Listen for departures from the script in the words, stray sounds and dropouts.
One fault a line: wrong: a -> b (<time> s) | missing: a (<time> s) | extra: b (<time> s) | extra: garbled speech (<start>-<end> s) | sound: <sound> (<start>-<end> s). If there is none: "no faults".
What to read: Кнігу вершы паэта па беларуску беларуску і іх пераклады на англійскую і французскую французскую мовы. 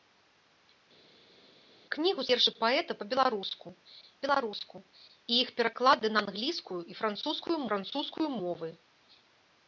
no faults